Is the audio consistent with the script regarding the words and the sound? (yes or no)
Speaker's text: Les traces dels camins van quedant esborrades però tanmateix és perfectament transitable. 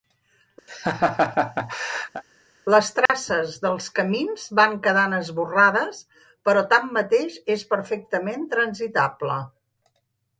no